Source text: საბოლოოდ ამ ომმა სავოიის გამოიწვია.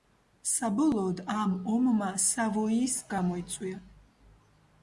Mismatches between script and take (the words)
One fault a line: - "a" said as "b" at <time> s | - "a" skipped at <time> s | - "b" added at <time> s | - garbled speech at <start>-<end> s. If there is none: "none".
none